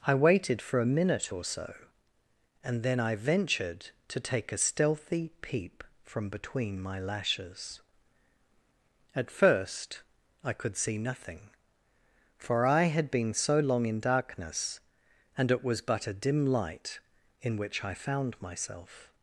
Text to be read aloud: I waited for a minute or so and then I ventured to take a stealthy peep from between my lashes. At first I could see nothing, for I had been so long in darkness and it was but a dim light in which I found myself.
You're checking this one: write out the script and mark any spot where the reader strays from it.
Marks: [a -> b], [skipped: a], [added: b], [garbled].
I waited for a minute or so and then I ventured to take a stealthy peep from between my lashes. At first I could see nothing, for I had been so long in darkness and it was but a dim light in which I found myself.